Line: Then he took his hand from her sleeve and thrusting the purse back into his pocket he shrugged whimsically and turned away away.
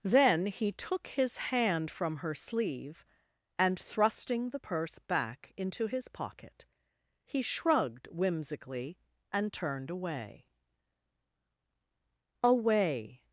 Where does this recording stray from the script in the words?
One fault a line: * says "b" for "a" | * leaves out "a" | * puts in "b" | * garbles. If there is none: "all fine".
all fine